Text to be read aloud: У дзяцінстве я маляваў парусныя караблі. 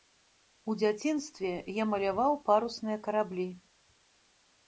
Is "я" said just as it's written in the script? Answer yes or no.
yes